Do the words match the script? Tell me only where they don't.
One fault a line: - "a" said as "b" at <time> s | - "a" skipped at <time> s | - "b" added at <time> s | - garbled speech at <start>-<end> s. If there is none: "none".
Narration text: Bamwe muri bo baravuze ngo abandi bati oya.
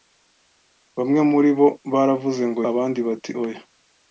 none